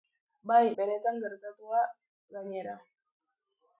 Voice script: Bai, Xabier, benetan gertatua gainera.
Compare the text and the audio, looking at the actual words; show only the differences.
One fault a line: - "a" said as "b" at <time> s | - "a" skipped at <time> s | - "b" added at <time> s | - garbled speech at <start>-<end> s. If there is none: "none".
- "Xabier" skipped at 0.6 s